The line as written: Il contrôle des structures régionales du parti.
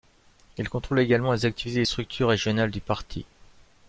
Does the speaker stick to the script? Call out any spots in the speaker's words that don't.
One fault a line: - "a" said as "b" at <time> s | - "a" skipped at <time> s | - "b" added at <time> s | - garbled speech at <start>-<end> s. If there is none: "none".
- "également les activités" added at 1.0 s